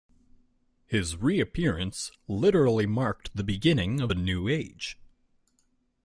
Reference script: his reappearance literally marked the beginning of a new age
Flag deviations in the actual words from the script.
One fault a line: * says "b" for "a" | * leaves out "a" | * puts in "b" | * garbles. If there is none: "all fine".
all fine